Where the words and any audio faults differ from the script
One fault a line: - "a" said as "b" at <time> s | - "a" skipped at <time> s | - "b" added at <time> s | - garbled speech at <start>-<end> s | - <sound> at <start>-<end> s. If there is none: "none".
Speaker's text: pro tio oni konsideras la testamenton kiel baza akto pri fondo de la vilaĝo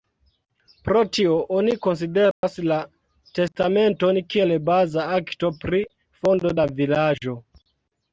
- dropout at 2.3-2.4 s
- "de" skipped at 6.6 s